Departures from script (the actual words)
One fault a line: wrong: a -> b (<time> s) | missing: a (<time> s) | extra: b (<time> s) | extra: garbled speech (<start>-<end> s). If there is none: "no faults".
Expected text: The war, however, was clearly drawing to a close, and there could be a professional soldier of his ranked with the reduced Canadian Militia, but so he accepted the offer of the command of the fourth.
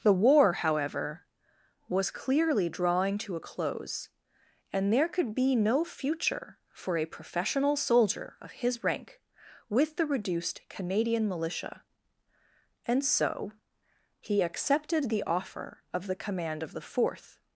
extra: no future for (5.5 s)
wrong: ranked -> rank (8.8 s)
wrong: but -> and (12.9 s)